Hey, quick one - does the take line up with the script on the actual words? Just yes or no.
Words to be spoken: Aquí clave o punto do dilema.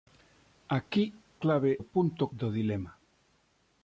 yes